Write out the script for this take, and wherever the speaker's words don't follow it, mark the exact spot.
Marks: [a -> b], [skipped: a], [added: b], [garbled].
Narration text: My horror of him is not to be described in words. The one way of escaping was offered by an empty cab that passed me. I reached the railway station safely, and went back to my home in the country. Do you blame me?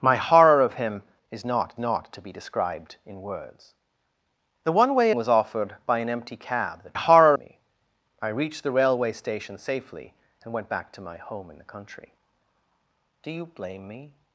My horror of him is not [added: not] to be described in words. The one way [skipped: of escaping] was offered by an empty cab that [passed -> horror] me. I reached the railway station safely, and went back to my home in the country. Do you blame me?